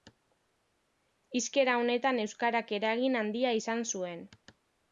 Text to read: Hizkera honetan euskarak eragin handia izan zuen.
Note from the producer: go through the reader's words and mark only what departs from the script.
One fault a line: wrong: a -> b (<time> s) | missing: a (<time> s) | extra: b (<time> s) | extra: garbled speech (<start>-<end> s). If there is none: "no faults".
no faults